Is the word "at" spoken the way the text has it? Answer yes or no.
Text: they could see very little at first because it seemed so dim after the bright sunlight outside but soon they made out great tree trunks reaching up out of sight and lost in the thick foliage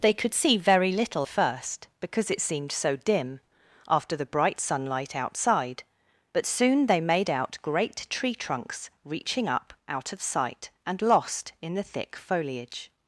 no